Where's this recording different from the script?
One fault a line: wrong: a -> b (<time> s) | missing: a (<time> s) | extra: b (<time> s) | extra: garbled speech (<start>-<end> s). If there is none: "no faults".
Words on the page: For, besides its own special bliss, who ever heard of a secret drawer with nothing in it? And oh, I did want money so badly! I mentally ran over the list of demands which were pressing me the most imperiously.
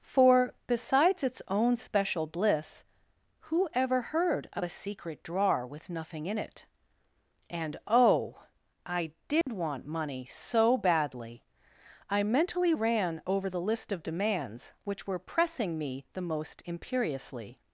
no faults